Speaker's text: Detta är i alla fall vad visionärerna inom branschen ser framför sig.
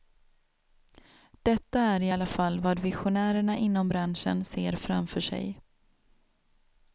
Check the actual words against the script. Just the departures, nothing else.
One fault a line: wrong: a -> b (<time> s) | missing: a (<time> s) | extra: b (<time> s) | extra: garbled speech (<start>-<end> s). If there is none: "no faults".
no faults